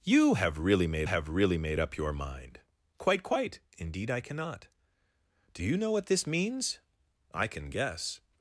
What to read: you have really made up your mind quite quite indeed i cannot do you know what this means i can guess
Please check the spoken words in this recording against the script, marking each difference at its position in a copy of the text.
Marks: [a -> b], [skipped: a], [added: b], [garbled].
you have really made [added: have really made] up your mind quite quite indeed i cannot do you know what this means i can guess